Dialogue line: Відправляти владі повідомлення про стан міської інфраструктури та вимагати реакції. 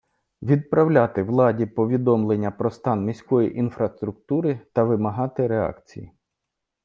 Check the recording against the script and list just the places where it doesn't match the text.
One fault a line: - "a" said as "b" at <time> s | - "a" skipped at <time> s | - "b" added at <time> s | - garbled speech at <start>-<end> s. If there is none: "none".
none